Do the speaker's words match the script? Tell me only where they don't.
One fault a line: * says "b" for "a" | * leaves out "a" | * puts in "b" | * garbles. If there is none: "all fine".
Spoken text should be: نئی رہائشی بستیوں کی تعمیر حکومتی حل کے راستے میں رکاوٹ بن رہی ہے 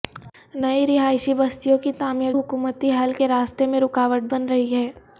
all fine